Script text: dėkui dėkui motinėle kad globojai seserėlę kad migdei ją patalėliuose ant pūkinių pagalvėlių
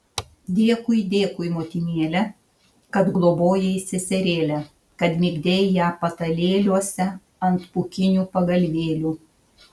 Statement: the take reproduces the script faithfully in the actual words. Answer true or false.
true